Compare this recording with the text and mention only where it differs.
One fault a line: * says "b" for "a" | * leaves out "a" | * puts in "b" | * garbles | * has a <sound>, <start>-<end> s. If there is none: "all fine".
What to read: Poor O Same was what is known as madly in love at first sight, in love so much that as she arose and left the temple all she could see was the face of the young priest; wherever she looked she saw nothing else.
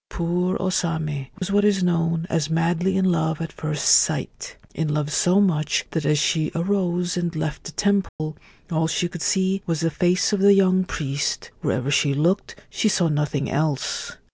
* has a dropout, 1.4-1.4 s
* has a dropout, 8.1-8.2 s